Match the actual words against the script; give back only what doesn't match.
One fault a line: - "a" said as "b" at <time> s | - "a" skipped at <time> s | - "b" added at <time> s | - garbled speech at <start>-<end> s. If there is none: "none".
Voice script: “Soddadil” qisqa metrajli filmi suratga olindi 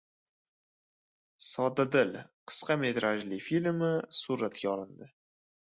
none